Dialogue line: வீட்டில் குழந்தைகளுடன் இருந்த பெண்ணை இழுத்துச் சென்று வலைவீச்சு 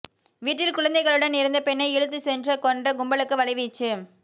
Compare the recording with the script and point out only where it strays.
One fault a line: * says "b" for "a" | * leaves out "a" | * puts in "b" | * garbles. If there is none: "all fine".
* puts in "கொன்ற கும்பலுக்கு"